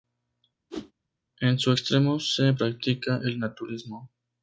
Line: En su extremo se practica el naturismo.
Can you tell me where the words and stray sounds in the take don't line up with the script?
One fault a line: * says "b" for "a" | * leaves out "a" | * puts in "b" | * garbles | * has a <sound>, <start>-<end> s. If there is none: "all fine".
* has a whoosh, 0.7-0.9 s